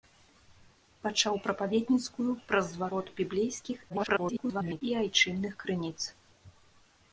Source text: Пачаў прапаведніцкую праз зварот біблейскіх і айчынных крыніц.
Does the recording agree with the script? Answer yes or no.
no